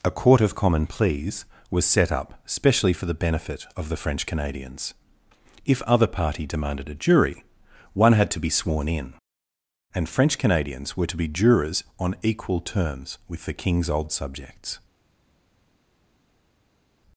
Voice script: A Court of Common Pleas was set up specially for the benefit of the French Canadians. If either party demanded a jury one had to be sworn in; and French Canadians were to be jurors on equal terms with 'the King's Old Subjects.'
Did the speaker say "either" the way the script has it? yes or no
no